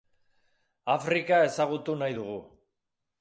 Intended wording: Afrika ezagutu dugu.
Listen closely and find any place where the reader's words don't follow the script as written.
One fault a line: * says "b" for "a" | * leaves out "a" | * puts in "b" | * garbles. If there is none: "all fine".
* puts in "nahi"